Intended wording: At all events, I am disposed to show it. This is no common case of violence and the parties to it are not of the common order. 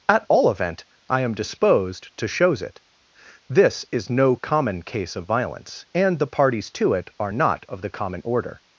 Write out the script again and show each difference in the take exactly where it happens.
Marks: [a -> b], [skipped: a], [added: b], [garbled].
At all [events, -> event] I am disposed to [show -> shows] it. This is no common case of violence and the parties to it are not of the common order.